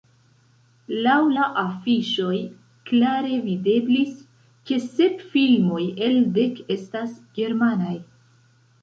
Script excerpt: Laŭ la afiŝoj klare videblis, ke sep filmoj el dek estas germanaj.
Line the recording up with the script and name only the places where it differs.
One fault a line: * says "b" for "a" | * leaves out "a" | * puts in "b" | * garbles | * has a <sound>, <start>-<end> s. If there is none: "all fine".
all fine